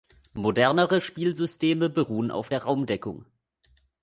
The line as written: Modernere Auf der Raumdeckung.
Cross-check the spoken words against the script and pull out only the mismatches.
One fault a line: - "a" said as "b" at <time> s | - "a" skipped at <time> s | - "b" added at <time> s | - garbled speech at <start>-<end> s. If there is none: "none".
- "Spielsysteme beruhen" added at 1.0 s